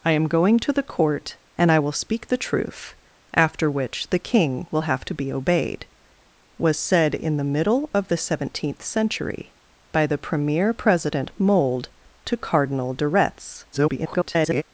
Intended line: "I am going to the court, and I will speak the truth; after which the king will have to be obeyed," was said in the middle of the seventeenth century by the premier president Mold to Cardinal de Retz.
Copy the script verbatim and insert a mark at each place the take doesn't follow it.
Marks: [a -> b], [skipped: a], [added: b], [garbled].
"I am going to the court, and I will speak the truth; after which the king will have to be obeyed," was said in the middle of the seventeenth century by the premier president Mold to Cardinal de Retz. [garbled]